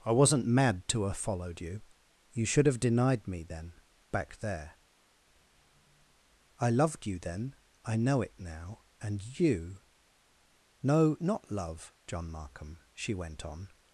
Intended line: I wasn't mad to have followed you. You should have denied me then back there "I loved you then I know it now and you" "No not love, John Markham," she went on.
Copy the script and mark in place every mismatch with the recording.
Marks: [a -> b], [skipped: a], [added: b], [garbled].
I wasn't mad to have followed you. You should have denied me then back there "I loved you then I know it now and you" "No not love, John Markham," she went on.